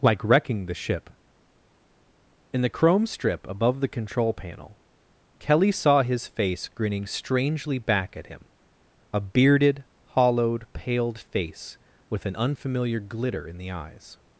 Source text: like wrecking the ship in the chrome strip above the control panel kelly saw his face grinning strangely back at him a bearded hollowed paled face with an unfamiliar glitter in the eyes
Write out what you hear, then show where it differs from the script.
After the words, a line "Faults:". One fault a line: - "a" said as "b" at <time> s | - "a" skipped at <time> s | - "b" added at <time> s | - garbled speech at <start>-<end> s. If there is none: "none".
like wrecking the ship in the chrome strip above the control panel kelly saw his face grinning strangely back at him a bearded hollowed paled face with an unfamiliar glitter in the eyes
Faults:
none